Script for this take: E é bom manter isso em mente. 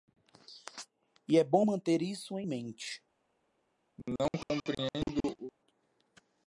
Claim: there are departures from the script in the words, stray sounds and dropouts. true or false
true